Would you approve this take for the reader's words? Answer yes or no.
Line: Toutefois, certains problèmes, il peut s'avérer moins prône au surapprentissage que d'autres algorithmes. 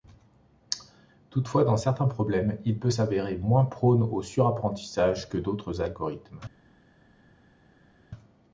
no